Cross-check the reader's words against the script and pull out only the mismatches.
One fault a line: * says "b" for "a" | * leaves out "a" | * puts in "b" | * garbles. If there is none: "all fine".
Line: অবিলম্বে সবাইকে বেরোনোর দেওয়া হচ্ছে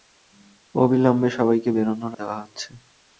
all fine